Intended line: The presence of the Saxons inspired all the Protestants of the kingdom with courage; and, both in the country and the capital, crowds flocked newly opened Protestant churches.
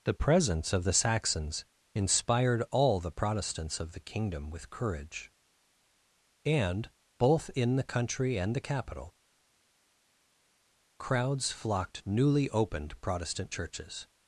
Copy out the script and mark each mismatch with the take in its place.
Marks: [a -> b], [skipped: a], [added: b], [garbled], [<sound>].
The presence of the Saxons inspired all the Protestants of the kingdom with courage; and, both in the country and the capital, crowds flocked newly opened Protestant churches.